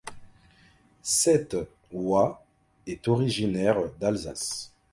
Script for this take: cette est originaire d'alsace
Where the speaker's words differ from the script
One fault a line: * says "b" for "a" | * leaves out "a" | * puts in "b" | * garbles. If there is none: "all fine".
* puts in "oie"